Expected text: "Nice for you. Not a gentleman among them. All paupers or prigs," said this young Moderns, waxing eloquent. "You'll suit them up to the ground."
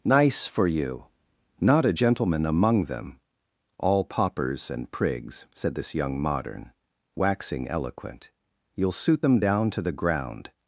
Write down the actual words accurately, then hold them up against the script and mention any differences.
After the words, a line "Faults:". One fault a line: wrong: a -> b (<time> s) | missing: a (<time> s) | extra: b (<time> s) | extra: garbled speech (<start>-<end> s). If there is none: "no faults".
"Nice for you. Not a gentleman among them. All paupers and prigs," said this young Modern, waxing eloquent. "You'll suit them down to the ground."
Faults:
wrong: or -> and (4.7 s)
wrong: Moderns -> Modern (6.2 s)
wrong: up -> down (9.4 s)